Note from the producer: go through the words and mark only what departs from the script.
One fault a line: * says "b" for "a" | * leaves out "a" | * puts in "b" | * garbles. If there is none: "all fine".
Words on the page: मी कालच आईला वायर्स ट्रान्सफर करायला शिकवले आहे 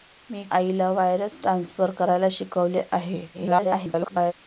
* leaves out "कालच"
* garbles